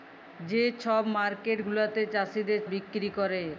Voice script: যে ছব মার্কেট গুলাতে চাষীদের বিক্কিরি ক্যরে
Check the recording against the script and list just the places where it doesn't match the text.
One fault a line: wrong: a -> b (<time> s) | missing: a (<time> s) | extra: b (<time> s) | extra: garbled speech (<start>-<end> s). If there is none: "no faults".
no faults